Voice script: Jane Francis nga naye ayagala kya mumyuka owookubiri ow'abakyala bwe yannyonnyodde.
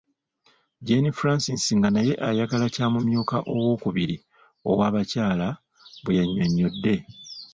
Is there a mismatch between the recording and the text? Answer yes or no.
no